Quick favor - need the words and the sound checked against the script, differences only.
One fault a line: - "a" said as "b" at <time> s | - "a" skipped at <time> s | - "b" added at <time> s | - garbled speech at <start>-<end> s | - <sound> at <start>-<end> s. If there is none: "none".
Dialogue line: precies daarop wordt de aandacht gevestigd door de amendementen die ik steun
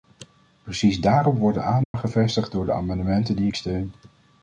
- dropout at 1.8-1.9 s